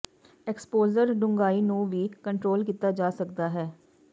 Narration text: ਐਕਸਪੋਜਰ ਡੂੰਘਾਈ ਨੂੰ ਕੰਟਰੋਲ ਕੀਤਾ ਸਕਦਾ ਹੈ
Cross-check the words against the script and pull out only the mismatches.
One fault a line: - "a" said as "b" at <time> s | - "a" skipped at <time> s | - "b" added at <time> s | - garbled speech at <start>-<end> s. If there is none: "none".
- "ਵੀ" added at 1.9 s
- "ਜਾ" added at 2.9 s